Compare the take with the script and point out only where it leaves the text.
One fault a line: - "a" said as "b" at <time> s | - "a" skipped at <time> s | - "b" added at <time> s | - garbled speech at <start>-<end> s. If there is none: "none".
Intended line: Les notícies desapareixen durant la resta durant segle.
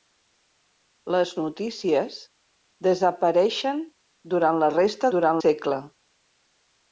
none